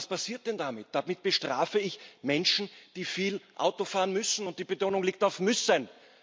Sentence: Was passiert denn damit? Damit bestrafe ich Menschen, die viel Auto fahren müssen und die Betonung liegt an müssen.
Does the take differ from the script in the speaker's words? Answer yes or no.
yes